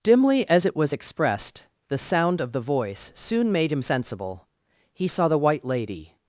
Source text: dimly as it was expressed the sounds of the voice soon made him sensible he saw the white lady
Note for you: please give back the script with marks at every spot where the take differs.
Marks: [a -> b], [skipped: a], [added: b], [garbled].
dimly as it was expressed the [sounds -> sound] of the voice soon made him sensible he saw the white lady